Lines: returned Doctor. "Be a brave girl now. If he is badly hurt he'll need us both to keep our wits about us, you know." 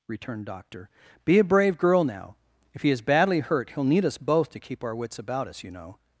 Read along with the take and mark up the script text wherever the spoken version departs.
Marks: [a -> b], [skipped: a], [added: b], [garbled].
returned Doctor. "Be a brave girl now. If he is badly hurt he'll need us both to keep our wits about us, you know."